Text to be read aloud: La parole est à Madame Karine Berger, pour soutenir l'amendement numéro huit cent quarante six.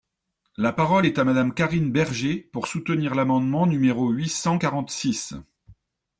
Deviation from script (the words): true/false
false